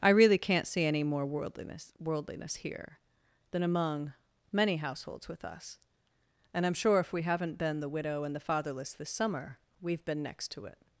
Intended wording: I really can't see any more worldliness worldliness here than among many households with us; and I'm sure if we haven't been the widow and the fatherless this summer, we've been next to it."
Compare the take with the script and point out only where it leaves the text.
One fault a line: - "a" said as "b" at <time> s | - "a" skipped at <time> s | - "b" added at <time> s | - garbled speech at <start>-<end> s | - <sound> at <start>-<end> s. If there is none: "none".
none